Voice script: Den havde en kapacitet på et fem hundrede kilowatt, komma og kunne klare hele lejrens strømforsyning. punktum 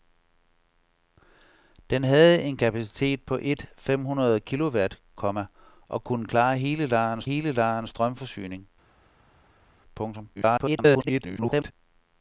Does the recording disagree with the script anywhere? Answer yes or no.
yes